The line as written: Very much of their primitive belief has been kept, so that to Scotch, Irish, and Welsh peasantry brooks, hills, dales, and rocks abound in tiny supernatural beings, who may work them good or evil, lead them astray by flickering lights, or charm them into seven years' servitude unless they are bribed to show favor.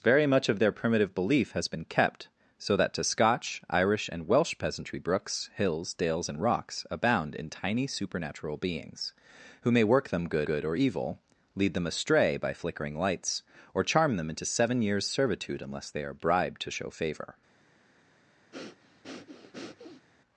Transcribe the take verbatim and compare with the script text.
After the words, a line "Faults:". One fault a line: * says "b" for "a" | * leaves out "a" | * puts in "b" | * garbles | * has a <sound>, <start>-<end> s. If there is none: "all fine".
Very much of their primitive belief has been kept, so that to Scotch, Irish, and Welsh peasantry brooks, hills, dales, and rocks abound in tiny supernatural beings, who may work them good good or evil, lead them astray by flickering lights, or charm them into seven years' servitude unless they are bribed to show favor.
Faults:
* puts in "good"
* has a breath, 18.5-20.1 s